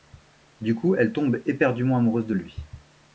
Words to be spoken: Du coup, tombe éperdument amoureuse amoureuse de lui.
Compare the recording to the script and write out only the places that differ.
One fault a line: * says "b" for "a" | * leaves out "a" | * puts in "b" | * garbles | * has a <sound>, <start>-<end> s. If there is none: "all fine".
* puts in "elle"
* leaves out "amoureuse"